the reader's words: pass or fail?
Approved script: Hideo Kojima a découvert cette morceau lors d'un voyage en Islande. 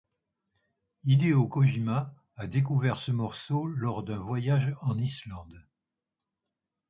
fail